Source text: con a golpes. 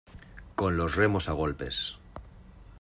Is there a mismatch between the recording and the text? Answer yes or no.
yes